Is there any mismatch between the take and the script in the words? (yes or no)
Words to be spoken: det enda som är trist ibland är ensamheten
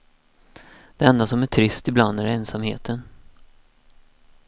no